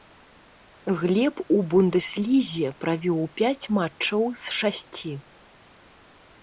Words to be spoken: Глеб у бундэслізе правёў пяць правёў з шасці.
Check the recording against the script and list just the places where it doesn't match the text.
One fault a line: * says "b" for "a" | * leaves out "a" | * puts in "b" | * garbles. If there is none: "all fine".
* says "матчаў" for "правёў"